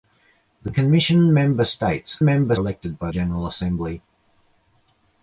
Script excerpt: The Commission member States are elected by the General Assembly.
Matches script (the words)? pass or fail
fail